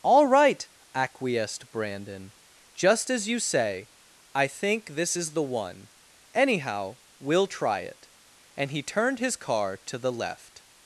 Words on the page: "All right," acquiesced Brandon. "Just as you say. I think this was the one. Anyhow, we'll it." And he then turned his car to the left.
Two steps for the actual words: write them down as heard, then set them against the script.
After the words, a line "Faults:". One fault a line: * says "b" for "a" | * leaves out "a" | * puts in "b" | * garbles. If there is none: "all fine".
"All right," acquiesced Brandon. "Just as you say. I think this is the one. Anyhow, we'll try it." And he turned his car to the left.
Faults:
* says "is" for "was"
* puts in "try"
* leaves out "then"